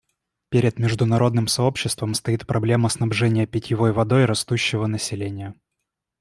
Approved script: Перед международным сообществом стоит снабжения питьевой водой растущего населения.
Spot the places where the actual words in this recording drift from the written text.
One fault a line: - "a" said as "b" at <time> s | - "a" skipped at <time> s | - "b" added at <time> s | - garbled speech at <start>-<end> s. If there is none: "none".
- "проблема" added at 2.5 s